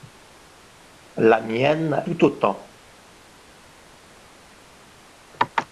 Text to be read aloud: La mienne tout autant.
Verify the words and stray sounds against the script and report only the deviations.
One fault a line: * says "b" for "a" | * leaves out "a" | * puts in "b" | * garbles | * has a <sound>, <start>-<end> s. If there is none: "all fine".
all fine